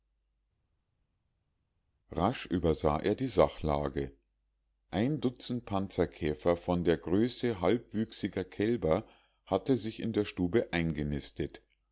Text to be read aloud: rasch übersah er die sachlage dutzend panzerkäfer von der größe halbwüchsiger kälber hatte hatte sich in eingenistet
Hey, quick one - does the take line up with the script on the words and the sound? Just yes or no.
no